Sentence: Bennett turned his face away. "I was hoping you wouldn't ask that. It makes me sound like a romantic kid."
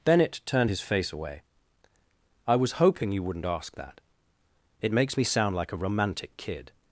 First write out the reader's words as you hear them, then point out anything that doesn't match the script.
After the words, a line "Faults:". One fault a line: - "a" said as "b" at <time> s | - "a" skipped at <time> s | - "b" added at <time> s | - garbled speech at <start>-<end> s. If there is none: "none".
Bennett turned his face away. "I was hoping you wouldn't ask that. It makes me sound like a romantic kid."
Faults:
none